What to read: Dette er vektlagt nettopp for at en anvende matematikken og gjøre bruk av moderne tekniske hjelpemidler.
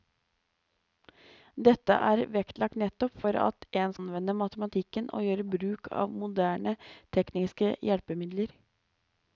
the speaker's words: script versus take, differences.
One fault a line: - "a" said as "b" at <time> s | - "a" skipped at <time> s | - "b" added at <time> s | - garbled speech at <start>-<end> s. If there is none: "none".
none